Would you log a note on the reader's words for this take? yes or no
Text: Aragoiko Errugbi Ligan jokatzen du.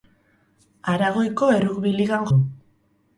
yes